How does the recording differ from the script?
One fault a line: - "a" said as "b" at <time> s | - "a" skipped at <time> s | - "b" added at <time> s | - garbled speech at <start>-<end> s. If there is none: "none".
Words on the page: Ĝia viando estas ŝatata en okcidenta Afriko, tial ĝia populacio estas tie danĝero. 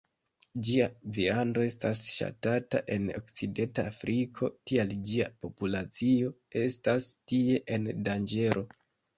- "en" added at 7.8 s